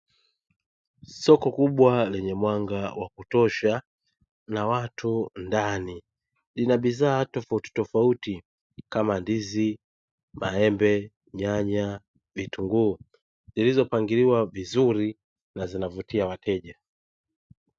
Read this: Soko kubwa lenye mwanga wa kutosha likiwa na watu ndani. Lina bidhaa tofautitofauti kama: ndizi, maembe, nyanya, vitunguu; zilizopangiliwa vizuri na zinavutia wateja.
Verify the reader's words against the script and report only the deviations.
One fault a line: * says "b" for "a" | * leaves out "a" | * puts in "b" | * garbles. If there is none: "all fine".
* leaves out "likiwa"